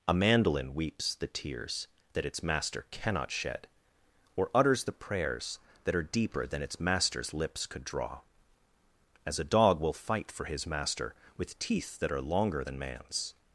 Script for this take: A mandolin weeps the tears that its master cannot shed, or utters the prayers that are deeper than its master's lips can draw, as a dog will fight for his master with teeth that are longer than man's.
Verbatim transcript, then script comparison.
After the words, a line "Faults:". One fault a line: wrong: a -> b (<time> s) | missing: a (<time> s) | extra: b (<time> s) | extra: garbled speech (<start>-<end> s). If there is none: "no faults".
A mandolin weeps the tears that its master cannot shed, or utters the prayers that are deeper than its master's lips could draw, as a dog will fight for his master with teeth that are longer than man's.
Faults:
wrong: can -> could (7.7 s)